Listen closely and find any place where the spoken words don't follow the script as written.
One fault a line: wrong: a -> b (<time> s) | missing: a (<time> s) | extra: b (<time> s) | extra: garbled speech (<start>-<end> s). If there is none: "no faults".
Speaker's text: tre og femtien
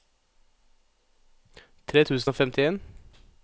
extra: tusen (2.0 s)